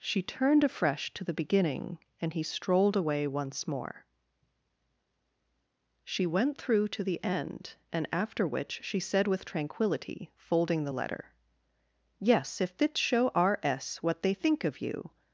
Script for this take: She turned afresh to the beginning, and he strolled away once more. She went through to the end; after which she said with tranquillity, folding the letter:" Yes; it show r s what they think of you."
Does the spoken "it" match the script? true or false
false